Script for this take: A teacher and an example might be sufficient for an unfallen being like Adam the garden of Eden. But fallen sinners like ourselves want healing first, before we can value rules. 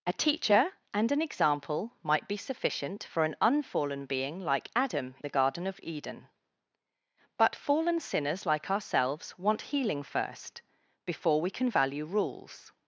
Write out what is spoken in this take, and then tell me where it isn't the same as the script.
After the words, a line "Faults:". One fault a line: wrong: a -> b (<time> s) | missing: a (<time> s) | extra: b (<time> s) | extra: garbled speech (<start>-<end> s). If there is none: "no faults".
A teacher and an example might be sufficient for an unfallen being like Adam the garden of Eden. But fallen sinners like ourselves want healing first, before we can value rules.
Faults:
no faults